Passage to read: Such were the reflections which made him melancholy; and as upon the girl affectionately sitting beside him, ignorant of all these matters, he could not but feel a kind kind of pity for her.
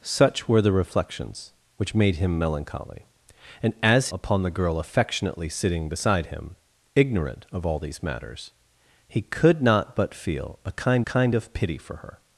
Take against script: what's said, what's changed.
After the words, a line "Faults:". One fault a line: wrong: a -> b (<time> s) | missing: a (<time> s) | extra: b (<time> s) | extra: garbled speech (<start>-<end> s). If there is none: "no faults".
Such were the reflections which made him melancholy; and as upon the girl affectionately sitting beside him, ignorant of all these matters, he could not but feel a kind kind of pity for her.
Faults:
no faults